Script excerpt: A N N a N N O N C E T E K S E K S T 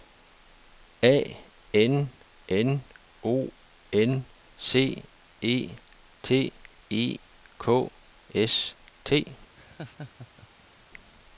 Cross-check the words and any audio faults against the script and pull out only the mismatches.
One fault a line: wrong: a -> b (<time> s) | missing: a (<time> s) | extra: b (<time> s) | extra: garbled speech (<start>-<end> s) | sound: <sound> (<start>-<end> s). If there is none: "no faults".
missing: a N N (2.8 s)
missing: E K S (8.7 s)
sound: laugh (9.5-10.9 s)